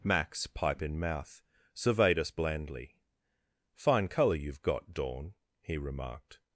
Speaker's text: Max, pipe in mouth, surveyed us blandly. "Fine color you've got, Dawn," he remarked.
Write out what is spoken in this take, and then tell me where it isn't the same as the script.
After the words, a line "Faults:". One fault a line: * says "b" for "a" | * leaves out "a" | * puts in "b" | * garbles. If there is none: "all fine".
Max, pipe in mouth, surveyed us blandly. "Fine color you've got, Dawn," he remarked.
Faults:
all fine